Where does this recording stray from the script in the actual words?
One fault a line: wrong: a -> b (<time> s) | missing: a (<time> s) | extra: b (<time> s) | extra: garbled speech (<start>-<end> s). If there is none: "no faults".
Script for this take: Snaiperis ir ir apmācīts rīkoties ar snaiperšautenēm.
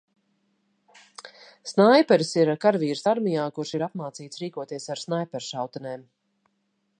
extra: karavīrs armijā kurš (2.6 s)